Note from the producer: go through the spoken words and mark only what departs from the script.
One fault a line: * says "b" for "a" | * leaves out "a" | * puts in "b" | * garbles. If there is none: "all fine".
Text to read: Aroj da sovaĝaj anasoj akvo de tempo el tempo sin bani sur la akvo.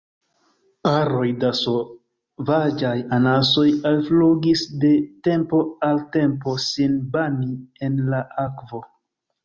* says "alflugis" for "akvo"
* says "al" for "el"
* says "en" for "sur"